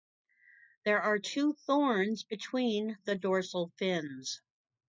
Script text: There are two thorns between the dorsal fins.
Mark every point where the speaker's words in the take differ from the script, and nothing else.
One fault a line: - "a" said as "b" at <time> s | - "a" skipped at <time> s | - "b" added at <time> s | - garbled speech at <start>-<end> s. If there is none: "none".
none